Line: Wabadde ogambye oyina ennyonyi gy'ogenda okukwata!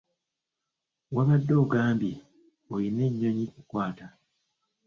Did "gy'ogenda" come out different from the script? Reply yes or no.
yes